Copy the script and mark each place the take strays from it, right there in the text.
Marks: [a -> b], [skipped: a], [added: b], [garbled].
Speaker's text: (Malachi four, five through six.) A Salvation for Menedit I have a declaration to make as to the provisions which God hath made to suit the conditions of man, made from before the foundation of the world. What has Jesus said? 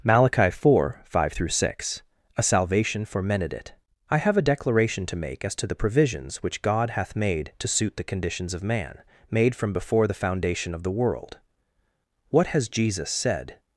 (Malachi four, five through six.) A Salvation for Menedit I have a declaration to make as to the provisions which God hath made to suit the conditions of man, made from before the foundation of the world. What has Jesus said?